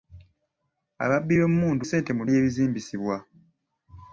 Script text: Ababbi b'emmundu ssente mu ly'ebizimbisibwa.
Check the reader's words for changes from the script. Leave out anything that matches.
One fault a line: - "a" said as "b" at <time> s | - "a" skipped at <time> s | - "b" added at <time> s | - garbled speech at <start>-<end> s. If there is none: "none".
none